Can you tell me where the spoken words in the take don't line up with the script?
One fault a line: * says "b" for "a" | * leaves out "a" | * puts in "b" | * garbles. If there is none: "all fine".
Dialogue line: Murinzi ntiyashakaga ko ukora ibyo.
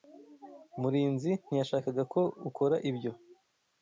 all fine